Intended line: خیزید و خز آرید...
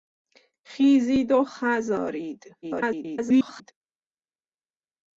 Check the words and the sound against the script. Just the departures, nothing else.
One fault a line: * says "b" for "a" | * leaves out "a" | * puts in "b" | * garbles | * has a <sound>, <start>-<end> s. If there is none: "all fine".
* garbles